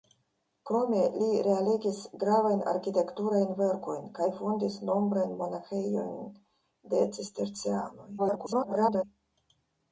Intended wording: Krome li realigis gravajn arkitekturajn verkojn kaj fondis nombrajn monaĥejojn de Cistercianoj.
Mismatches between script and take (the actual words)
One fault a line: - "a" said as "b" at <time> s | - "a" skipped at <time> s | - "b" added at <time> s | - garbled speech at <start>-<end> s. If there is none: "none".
- garbled speech at 8.2-9.0 s